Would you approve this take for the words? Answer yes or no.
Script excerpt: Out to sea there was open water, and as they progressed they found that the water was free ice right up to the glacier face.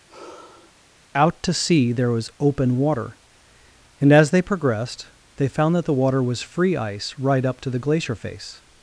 yes